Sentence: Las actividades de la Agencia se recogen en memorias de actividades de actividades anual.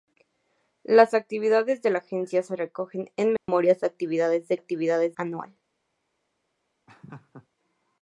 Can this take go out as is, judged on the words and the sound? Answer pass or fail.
fail